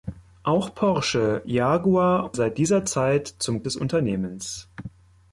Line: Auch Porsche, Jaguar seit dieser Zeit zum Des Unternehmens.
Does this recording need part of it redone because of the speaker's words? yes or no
no